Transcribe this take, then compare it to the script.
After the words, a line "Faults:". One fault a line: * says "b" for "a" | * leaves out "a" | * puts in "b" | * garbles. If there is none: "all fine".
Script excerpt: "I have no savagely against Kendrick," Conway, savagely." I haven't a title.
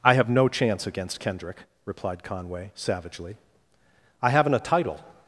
"I have no chance against Kendrick," replied Conway, savagely." I haven't a title.
Faults:
* says "chance" for "savagely"
* puts in "replied"